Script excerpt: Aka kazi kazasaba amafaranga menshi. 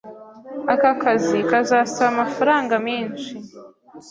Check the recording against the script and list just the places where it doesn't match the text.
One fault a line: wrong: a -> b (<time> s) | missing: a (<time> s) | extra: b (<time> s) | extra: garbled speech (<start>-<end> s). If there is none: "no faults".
no faults